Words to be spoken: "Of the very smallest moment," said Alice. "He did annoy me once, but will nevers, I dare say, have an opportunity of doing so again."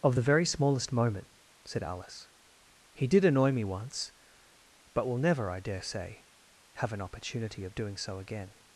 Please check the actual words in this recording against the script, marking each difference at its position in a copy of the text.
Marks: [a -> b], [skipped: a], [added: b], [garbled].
"Of the very smallest moment," said Alice. "He did annoy me once, but will [nevers, -> never] I dare say, have an opportunity of doing so again."